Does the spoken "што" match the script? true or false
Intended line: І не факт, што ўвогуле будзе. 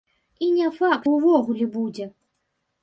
false